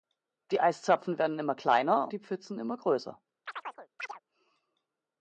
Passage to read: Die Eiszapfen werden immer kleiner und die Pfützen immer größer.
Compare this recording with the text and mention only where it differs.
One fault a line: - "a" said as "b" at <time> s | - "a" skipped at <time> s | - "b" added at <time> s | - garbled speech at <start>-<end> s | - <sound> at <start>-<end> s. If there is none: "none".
- "und" skipped at 2.1 s
- chirp at 3.5-4.2 s